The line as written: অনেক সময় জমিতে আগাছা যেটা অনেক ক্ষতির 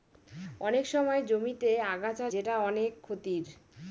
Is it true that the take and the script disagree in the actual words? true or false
false